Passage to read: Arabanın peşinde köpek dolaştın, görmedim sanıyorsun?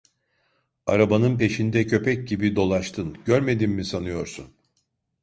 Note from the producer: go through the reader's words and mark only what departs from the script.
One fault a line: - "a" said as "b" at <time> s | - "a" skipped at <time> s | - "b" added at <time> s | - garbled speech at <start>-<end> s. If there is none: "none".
- "gibi" added at 2.3 s
- "mi" added at 3.7 s